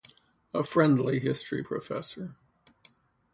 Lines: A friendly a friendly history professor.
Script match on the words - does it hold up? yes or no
no